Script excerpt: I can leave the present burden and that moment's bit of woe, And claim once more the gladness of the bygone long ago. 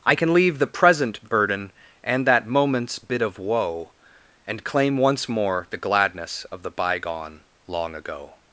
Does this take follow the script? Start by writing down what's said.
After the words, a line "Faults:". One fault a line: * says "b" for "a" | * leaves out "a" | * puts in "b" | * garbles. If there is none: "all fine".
I can leave the present burden and that moment's bit of woe, And claim once more the gladness of the bygone long ago.
Faults:
all fine